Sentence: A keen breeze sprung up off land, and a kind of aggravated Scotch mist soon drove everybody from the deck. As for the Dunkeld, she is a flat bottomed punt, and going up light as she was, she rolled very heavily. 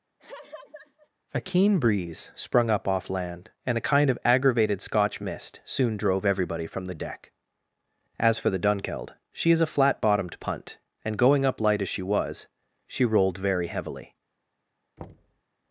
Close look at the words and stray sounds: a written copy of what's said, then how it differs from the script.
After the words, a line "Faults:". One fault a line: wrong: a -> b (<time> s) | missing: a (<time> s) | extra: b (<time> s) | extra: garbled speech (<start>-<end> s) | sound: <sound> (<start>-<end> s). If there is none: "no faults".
A keen breeze sprung up off land, and a kind of aggravated Scotch mist soon drove everybody from the deck. As for the Dunkeld, she is a flat bottomed punt, and going up light as she was, she rolled very heavily.
Faults:
sound: laugh (0.2-1.1 s)
sound: thud (15.0-15.4 s)